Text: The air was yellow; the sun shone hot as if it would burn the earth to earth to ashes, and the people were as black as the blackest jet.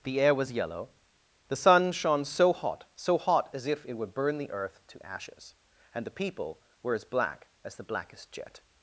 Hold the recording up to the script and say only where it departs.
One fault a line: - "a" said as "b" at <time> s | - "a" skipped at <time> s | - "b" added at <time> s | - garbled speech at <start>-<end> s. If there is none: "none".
- "so" added at 2.2 s
- "so hot" added at 3.0 s
- "earth to" skipped at 5.1 s